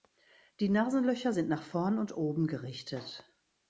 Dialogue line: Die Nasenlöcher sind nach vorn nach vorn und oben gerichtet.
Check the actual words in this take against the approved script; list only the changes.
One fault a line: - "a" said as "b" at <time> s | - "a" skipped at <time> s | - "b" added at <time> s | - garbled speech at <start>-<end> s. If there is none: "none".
- "nach vorn" skipped at 2.0 s